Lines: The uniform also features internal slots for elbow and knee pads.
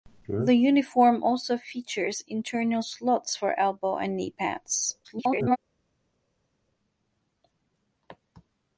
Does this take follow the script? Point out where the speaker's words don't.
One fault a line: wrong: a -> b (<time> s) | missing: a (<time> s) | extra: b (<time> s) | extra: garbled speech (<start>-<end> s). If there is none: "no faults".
extra: garbled speech (5.0-5.6 s)